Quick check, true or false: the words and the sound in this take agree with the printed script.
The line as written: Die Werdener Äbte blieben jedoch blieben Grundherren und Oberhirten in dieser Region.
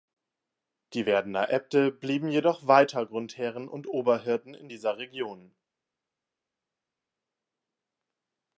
false